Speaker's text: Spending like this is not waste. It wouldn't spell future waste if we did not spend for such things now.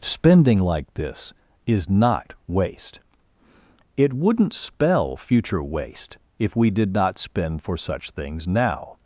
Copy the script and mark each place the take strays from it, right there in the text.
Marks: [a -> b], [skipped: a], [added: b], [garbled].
Spending like this is not waste. It wouldn't spell future waste if we did not spend for such things now.